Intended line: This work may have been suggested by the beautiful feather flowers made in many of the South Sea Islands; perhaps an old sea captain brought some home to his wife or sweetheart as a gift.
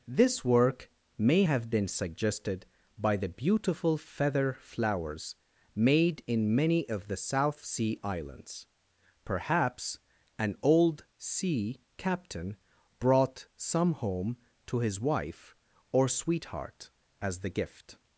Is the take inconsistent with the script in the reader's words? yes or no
yes